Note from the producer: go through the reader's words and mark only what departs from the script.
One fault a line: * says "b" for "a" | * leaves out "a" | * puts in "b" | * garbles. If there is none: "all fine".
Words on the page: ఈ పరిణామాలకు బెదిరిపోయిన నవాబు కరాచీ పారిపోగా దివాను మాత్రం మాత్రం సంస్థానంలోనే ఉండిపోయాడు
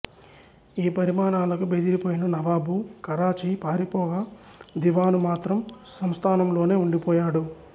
* leaves out "మాత్రం"